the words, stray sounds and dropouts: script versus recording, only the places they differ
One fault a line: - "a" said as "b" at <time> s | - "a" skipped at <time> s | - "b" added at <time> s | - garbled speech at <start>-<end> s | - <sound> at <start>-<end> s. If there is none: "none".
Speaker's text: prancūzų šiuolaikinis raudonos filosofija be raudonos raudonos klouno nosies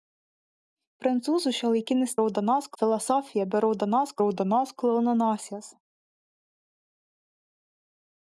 none